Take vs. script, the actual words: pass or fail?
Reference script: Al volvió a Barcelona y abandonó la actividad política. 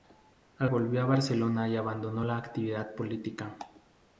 pass